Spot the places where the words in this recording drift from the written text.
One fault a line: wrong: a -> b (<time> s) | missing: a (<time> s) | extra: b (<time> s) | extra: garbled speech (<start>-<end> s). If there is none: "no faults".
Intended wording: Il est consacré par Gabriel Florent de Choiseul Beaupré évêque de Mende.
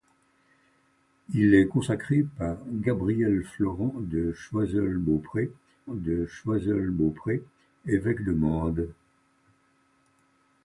extra: de Choiseul Beaupré (5.9 s)